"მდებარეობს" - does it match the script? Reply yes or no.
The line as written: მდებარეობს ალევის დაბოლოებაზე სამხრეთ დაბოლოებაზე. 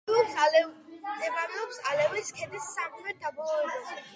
yes